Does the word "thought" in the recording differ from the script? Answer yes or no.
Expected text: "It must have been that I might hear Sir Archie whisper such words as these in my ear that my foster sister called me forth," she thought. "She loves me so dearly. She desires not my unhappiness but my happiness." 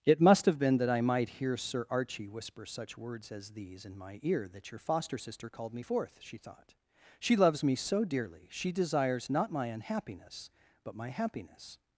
no